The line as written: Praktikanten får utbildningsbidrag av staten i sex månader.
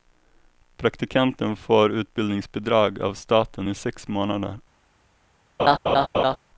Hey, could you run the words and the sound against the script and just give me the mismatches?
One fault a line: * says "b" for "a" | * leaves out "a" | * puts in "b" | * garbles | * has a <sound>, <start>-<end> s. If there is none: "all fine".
* has a laugh, 5.6-6.4 s